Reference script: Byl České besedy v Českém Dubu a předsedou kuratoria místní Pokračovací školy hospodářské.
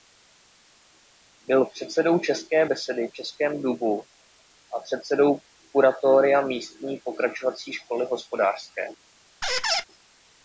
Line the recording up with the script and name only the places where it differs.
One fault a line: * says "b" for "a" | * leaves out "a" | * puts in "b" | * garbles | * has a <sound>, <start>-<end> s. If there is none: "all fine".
* puts in "předsedou"
* has a squeak, 9.4-9.8 s